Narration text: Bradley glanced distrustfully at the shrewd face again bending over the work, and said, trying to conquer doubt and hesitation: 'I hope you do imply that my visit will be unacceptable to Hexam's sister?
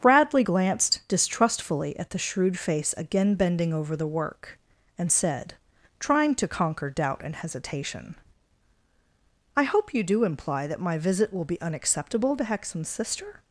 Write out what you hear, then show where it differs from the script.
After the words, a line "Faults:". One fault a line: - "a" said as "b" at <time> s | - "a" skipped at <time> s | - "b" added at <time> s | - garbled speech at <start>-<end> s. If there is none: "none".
Bradley glanced distrustfully at the shrewd face again bending over the work, and said, trying to conquer doubt and hesitation: 'I hope you do imply that my visit will be unacceptable to Hexam's sister?
Faults:
none